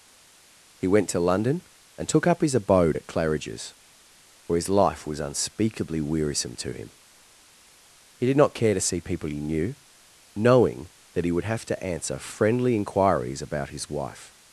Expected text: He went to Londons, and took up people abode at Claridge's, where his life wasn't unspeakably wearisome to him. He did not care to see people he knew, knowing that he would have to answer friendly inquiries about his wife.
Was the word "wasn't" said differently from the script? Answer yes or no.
yes